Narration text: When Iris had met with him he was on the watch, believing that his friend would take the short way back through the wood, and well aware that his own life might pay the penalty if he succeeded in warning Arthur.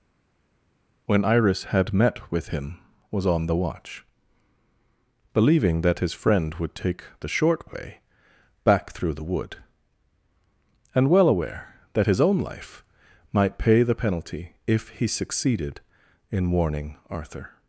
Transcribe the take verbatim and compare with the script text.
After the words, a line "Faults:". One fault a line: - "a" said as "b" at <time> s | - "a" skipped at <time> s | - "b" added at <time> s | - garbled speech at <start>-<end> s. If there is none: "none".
When Iris had met with him was on the watch, believing that his friend would take the short way back through the wood, and well aware that his own life might pay the penalty if he succeeded in warning Arthur.
Faults:
- "he" skipped at 2.8 s